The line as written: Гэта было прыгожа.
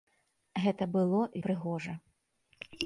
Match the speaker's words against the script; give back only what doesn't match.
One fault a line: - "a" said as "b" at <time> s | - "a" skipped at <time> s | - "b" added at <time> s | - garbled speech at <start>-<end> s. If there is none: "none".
none